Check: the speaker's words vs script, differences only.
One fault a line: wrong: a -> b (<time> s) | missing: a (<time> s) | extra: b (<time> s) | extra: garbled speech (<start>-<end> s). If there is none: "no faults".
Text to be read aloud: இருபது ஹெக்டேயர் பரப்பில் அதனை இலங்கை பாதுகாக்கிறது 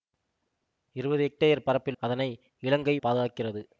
no faults